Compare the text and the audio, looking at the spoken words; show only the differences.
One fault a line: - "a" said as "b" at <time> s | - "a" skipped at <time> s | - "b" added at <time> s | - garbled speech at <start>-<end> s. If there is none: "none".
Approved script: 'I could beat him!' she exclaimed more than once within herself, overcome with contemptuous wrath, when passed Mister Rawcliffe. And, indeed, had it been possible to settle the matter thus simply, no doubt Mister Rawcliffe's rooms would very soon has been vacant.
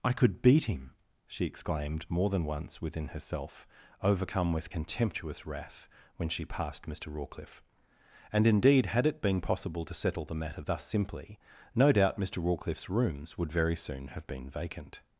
- "she" added at 6.3 s
- "has" said as "have" at 14.1 s